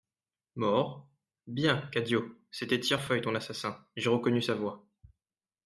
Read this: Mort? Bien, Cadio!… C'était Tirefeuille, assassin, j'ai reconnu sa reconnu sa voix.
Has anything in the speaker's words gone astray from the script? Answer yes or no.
yes